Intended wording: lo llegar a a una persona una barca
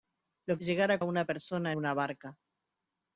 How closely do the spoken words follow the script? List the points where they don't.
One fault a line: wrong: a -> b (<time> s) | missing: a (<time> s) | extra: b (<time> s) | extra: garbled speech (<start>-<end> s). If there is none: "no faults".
no faults